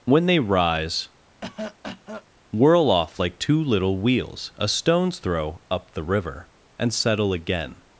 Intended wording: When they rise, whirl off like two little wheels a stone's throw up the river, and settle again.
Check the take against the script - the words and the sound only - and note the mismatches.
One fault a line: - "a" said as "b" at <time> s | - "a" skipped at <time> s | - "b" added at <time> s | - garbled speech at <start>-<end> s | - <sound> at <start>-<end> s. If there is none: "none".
- cough at 1.4-2.3 s